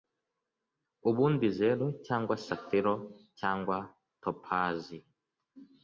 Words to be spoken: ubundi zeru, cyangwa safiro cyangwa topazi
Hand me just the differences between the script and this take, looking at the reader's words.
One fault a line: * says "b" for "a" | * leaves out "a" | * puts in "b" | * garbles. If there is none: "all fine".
all fine